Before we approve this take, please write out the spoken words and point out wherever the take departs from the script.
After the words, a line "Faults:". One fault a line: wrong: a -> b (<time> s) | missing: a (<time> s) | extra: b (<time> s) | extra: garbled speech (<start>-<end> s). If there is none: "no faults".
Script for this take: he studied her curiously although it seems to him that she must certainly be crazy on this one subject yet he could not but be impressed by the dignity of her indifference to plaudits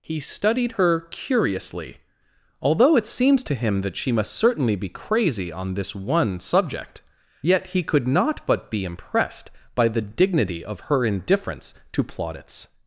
he studied her curiously although it seems to him that she must certainly be crazy on this one subject yet he could not but be impressed by the dignity of her indifference to plaudits
Faults:
no faults